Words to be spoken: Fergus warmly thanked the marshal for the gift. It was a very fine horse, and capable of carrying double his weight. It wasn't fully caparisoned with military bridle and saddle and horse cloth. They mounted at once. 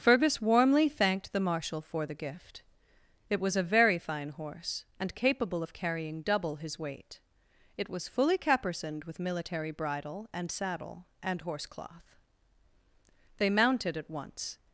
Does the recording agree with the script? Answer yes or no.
no